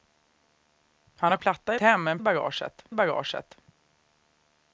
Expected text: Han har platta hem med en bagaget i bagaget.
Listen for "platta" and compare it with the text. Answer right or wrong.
right